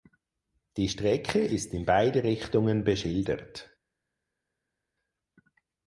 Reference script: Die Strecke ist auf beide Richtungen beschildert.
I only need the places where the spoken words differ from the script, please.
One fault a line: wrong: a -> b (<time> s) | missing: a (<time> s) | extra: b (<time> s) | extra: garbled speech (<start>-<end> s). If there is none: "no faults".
wrong: auf -> in (1.8 s)